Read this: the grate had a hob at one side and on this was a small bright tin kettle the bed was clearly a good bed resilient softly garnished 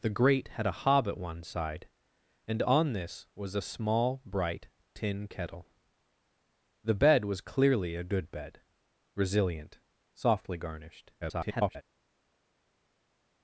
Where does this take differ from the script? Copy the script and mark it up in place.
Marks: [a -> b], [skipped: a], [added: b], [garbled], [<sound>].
the grate had a hob at one side and on this was a small bright tin kettle the bed was clearly a good bed resilient softly garnished [garbled]